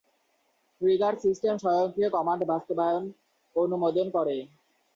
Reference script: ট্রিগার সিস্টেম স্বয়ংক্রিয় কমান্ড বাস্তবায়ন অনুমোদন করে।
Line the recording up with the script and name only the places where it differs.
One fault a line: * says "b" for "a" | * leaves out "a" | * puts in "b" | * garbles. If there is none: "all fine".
all fine